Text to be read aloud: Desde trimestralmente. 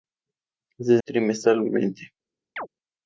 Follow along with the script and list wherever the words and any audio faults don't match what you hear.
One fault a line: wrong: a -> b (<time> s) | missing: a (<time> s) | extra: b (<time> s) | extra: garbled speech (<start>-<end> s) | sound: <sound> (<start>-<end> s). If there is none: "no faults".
sound: chirp (2.6-2.7 s)